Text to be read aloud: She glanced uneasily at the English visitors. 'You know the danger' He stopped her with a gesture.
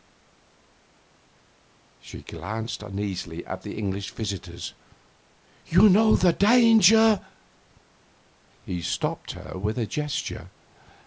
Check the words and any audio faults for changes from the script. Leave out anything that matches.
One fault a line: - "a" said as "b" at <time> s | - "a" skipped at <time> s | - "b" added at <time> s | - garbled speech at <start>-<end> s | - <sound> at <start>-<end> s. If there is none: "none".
none